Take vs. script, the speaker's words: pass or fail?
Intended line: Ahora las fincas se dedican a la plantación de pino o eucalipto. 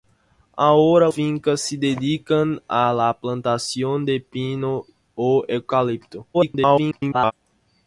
fail